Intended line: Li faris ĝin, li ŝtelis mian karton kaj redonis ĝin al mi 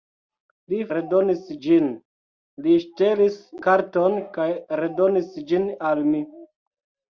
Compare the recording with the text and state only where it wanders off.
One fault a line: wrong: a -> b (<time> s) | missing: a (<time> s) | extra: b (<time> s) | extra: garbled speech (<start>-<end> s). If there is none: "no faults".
wrong: faris -> redonis (0.9 s)
missing: mian (3.4 s)